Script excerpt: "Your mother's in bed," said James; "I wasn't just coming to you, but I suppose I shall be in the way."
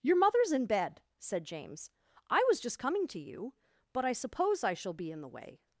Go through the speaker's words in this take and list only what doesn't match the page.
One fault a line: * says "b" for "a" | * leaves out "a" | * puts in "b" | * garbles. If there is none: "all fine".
* says "was" for "wasn't"